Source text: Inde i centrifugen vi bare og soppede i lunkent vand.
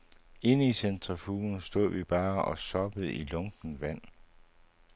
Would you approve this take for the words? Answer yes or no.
no